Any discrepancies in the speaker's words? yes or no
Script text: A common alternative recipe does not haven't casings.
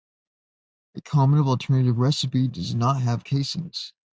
yes